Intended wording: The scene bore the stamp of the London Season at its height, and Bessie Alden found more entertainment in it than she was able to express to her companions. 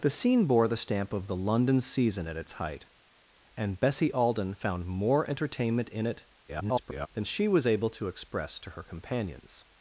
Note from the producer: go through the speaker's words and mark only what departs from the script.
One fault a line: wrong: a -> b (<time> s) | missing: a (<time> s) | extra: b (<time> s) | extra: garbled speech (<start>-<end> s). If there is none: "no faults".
extra: garbled speech (6.5-7.1 s)